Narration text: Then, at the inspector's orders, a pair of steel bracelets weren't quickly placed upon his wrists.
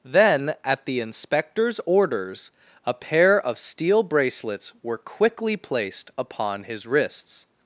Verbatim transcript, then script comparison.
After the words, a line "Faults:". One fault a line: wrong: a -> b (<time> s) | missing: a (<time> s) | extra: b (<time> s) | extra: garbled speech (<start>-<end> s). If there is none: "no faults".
Then, at the inspector's orders, a pair of steel bracelets were quickly placed upon his wrists.
Faults:
wrong: weren't -> were (4.8 s)